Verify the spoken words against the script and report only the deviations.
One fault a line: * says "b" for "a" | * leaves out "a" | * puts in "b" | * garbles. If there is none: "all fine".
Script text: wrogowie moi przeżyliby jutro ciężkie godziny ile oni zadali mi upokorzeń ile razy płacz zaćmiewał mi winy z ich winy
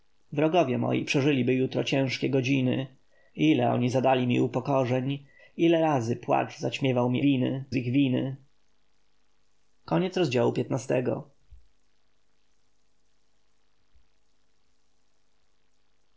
all fine